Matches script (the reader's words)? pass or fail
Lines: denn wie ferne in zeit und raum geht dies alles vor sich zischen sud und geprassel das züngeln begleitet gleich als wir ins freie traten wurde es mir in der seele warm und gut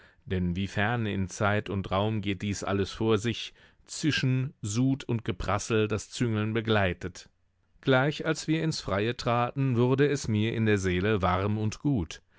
pass